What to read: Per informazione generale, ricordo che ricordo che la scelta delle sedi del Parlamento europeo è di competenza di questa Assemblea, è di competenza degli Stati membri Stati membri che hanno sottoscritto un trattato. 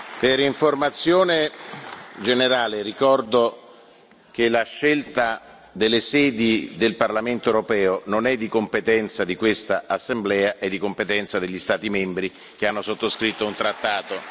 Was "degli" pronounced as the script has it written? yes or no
yes